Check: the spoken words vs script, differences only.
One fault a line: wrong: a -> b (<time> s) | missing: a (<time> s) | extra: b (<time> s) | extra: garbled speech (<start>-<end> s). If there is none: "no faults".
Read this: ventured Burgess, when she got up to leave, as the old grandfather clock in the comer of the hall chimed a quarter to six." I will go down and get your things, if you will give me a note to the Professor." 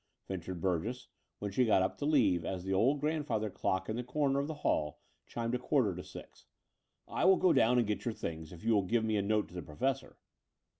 no faults